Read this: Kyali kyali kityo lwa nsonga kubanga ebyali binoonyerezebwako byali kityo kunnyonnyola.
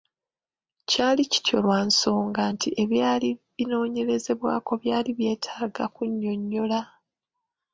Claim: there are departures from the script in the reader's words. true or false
true